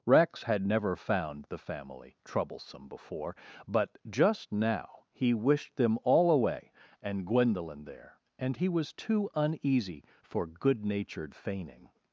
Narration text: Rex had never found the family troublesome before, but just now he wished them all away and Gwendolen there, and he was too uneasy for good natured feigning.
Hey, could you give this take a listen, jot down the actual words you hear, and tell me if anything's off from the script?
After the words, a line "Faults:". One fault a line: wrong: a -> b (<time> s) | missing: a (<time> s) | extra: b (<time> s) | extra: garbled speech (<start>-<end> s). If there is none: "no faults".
Rex had never found the family troublesome before, but just now he wished them all away and Gwendolen there, and he was too uneasy for good natured feigning.
Faults:
no faults